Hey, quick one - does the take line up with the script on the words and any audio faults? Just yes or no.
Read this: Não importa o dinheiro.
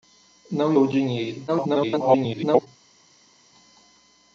no